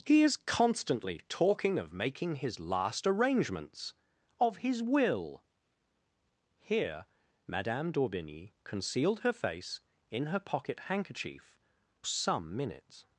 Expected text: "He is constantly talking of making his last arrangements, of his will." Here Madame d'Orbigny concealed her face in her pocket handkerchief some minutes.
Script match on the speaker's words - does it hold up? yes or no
yes